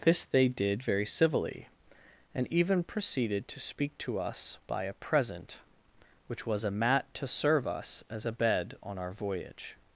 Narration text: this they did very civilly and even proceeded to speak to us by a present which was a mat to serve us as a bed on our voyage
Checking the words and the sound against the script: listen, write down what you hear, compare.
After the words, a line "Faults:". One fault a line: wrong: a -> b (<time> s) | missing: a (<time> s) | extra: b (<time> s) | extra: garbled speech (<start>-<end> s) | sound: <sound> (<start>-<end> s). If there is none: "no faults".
this they did very civilly and even proceeded to speak to us by a present which was a mat to serve us as a bed on our voyage
Faults:
no faults